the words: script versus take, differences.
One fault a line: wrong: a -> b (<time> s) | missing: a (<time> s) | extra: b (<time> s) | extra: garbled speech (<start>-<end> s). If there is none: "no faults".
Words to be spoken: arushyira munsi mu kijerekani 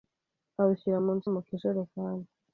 no faults